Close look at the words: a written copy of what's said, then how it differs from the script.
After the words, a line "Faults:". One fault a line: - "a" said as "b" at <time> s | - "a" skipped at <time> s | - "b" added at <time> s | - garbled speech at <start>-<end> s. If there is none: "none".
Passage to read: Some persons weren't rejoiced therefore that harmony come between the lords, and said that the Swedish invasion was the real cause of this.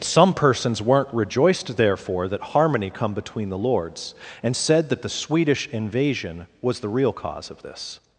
Some persons weren't rejoiced therefore that harmony come between the lords, and said that the Swedish invasion was the real cause of this.
Faults:
none